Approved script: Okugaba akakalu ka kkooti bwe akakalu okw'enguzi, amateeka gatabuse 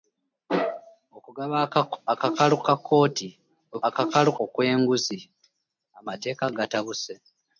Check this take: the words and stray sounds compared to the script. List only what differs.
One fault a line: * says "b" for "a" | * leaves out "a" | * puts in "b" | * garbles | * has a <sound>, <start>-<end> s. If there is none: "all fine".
all fine